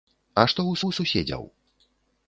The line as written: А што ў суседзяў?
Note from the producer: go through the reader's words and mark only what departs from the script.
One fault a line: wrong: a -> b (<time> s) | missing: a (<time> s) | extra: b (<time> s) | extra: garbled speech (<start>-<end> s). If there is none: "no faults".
extra: ў (0.9 s)